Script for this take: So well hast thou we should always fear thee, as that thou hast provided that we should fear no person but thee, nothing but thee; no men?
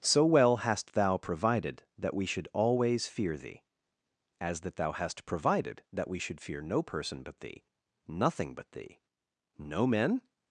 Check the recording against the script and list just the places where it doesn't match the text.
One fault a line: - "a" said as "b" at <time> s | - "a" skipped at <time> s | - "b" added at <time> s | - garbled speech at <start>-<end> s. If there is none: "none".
- "provided that" added at 1.2 s